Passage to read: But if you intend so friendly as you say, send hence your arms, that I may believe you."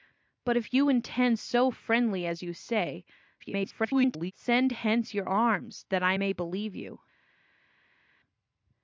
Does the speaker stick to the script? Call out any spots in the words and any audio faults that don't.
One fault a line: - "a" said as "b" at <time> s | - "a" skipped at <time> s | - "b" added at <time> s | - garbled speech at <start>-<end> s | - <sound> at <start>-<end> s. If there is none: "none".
- garbled speech at 3.4-4.3 s